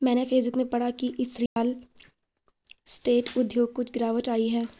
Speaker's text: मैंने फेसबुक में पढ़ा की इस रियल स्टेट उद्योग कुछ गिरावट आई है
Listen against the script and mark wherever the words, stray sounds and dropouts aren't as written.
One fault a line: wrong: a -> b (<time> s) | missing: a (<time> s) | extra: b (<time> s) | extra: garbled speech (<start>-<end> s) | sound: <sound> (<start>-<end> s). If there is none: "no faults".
sound: dropout (1.5-1.6 s)